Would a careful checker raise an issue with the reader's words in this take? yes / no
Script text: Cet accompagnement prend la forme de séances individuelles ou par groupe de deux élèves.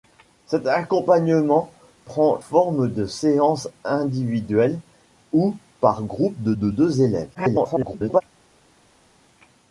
yes